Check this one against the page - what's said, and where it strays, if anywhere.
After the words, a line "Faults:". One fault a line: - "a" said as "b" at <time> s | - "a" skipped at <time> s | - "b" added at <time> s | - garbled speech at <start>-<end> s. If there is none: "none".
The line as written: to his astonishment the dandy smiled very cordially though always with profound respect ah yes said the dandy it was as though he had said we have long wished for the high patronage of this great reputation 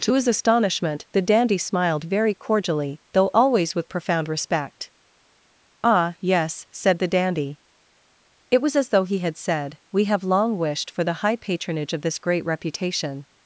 to his astonishment the dandy smiled very cordially though always with profound respect ah yes said the dandy it was as though he had said we have long wished for the high patronage of this great reputation
Faults:
none